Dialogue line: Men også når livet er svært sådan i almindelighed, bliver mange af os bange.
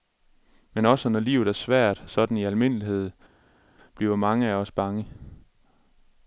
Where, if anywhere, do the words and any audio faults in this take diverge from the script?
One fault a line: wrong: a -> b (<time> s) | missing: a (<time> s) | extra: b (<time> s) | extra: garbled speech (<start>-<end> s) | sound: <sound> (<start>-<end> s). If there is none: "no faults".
no faults